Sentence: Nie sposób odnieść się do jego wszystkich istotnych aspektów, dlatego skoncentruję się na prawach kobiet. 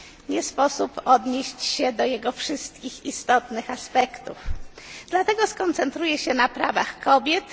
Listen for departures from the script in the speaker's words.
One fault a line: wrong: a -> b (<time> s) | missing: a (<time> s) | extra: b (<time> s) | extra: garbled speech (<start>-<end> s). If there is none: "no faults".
no faults